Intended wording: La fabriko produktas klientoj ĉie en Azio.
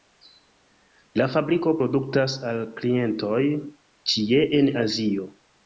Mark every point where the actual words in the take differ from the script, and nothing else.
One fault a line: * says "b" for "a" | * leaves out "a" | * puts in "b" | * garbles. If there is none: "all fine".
* puts in "al"